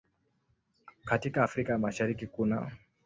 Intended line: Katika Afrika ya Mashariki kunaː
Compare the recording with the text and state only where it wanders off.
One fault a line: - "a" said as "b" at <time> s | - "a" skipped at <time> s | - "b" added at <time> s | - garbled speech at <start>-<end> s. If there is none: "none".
none